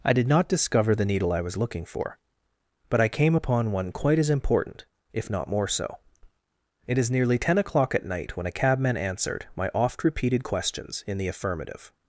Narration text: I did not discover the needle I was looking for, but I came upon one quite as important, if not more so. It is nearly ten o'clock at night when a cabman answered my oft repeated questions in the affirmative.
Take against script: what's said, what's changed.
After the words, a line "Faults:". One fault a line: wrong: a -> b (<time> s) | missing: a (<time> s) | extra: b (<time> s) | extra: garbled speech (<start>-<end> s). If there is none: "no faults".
I did not discover the needle I was looking for, but I came upon one quite as important, if not more so. It is nearly ten o'clock at night when a cabman answered my oft repeated questions in the affirmative.
Faults:
no faults